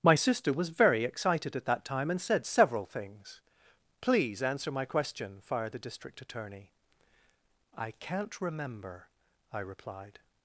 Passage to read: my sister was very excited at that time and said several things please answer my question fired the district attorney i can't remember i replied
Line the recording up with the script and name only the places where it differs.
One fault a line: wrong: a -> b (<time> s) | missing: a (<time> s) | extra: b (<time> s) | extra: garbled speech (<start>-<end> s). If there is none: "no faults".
no faults